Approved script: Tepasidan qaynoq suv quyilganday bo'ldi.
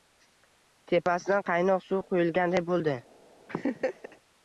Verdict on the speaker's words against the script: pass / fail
pass